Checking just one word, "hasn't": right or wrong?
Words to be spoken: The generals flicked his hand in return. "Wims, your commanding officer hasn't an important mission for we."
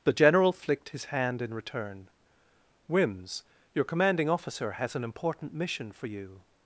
wrong